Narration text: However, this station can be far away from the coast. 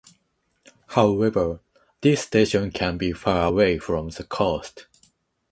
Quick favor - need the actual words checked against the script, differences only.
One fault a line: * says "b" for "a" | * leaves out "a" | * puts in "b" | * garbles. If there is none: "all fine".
all fine